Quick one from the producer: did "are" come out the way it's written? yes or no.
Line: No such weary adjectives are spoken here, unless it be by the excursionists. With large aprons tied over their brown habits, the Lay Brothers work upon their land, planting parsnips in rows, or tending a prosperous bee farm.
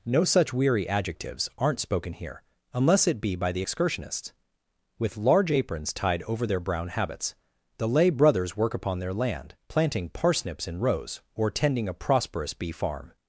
no